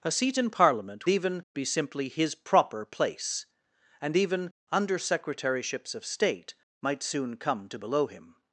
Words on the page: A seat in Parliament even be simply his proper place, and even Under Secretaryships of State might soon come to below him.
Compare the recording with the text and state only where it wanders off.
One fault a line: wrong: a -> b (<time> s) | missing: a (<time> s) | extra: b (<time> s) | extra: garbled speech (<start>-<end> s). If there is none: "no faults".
no faults